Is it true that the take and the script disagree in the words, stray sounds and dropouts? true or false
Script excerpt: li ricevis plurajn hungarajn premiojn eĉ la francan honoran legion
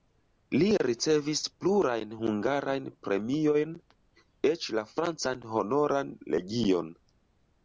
false